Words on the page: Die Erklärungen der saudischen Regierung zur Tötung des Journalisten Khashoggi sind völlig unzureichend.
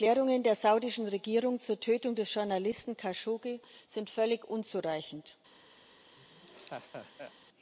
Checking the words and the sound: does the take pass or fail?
fail